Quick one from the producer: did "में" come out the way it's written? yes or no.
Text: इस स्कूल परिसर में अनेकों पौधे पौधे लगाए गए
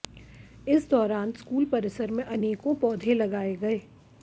yes